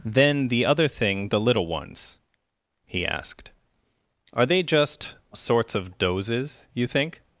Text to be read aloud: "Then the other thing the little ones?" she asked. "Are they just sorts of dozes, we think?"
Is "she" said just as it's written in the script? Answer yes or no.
no